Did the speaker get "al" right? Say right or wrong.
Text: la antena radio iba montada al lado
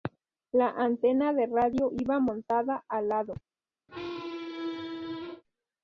right